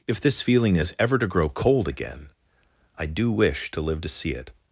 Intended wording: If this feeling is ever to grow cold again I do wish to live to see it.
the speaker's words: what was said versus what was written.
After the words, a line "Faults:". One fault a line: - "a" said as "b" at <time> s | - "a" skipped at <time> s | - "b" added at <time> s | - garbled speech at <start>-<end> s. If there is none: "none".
If this feeling is ever to grow cold again I do wish to live to see it.
Faults:
none